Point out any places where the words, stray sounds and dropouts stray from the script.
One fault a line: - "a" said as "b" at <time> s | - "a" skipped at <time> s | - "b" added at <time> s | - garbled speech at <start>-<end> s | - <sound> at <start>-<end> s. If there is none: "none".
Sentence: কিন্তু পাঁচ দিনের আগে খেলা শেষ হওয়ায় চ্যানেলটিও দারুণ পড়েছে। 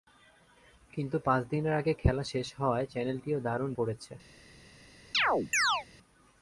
- chirp at 5.1-5.9 s